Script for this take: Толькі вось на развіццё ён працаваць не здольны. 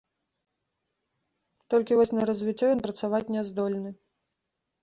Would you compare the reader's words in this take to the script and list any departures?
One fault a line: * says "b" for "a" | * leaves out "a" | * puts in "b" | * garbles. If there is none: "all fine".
all fine